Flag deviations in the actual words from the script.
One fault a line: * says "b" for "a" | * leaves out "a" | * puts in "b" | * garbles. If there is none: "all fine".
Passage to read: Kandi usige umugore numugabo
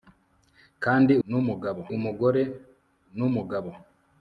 * says "numugabo" for "usige"